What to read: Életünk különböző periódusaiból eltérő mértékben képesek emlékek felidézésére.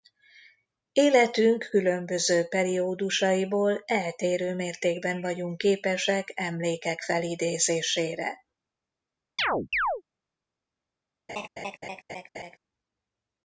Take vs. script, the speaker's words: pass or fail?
fail